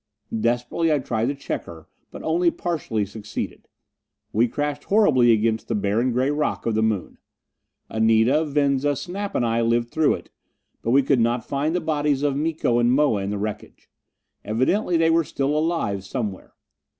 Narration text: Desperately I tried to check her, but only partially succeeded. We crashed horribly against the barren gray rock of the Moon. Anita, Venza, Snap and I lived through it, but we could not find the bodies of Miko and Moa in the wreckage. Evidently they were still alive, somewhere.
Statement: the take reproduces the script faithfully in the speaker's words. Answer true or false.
true